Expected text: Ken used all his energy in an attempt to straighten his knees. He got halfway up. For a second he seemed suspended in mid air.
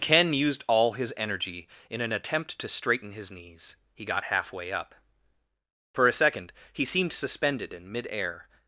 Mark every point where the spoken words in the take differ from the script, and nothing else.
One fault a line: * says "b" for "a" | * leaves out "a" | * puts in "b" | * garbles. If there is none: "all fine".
all fine